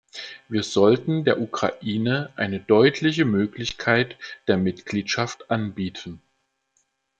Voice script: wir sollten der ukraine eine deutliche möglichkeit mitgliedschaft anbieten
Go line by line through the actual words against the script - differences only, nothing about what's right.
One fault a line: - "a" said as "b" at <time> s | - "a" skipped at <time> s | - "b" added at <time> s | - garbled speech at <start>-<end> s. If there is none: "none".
- "der" added at 4.5 s